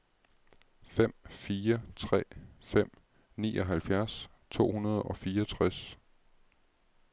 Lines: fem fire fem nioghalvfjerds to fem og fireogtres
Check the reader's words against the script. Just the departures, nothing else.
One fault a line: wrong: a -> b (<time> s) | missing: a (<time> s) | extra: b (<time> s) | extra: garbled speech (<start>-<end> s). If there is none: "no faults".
extra: tre (2.0 s)
wrong: fem -> hundrede (4.7 s)